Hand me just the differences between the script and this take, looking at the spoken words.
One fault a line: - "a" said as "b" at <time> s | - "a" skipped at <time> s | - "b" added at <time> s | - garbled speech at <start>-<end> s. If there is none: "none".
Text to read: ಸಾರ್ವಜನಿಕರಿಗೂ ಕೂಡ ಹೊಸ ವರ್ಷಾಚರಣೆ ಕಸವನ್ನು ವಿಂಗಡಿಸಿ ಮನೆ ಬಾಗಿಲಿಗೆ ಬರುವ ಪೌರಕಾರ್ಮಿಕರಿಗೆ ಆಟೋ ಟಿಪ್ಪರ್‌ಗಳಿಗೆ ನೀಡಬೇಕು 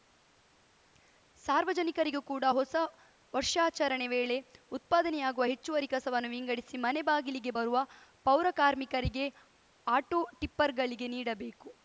- "ವೇಳೆ ಉತ್ಪಾದನೆಯಾಗುವ ಹೆಚ್ಚುವರಿ" added at 4.1 s